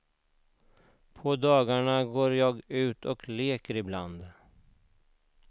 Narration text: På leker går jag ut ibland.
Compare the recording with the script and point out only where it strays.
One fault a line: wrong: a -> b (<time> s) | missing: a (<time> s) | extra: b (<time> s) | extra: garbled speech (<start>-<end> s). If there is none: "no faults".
wrong: leker -> dagarna (1.4 s)
extra: och leker (3.0 s)